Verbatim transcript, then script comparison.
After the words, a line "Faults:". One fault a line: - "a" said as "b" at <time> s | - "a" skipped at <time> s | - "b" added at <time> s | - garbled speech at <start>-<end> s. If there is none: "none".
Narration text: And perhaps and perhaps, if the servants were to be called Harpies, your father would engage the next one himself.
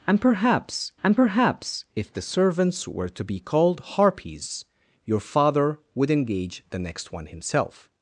And perhaps and perhaps, if the servants were to be called Harpies, your father would engage the next one himself.
Faults:
none